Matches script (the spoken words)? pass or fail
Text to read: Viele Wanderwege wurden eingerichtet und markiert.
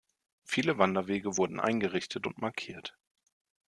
pass